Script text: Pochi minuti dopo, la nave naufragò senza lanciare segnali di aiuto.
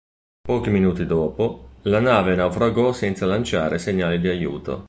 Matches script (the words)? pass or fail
pass